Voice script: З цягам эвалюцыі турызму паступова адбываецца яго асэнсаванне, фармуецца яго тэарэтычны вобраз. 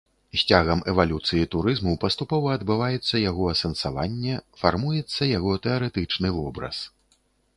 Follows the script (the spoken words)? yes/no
yes